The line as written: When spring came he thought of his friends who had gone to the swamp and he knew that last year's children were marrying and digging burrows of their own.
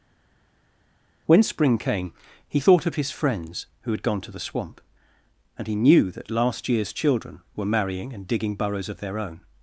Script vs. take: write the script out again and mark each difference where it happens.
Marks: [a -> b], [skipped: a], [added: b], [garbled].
When spring came he thought of his friends who had gone to the swamp and he knew that last year's children were marrying and digging burrows of their own.